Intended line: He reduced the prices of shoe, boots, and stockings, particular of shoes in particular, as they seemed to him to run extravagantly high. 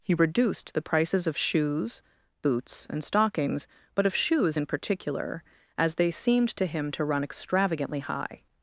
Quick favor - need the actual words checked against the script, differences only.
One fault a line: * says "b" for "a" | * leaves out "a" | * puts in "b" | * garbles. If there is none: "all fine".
* says "shoes" for "shoe"
* says "but" for "particular"